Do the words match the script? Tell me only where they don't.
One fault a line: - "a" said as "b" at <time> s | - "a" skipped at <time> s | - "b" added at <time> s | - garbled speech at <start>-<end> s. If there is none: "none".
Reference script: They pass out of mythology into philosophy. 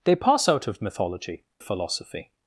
- "into" skipped at 1.4 s